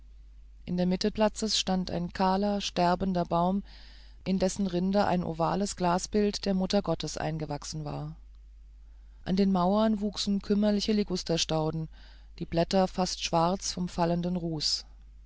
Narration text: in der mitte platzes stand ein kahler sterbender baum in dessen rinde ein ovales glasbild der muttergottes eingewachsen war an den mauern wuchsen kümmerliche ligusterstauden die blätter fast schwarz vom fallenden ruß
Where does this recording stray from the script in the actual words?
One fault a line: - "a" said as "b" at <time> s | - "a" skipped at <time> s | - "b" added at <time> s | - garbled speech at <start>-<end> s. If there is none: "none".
none